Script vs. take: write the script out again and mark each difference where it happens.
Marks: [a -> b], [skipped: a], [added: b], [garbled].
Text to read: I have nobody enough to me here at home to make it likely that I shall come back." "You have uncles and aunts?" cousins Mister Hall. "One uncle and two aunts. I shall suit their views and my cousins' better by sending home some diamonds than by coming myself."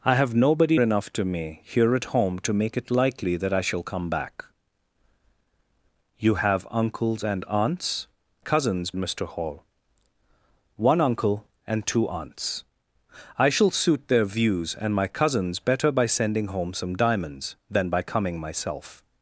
I have nobody enough to me here at home to make it likely that I shall come back." "You have uncles and aunts?" cousins Mister Hall. "One uncle and two aunts. I shall suit their views and my cousins' better by sending home some diamonds than by coming myself."